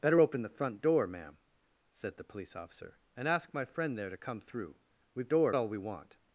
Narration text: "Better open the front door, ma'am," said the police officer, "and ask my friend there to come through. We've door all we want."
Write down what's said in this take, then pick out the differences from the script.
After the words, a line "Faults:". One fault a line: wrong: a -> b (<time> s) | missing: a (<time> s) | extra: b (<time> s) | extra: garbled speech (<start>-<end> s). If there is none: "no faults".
"Better open the front door, ma'am," said the police officer, "and ask my friend there to come through. We've door all we want."
Faults:
no faults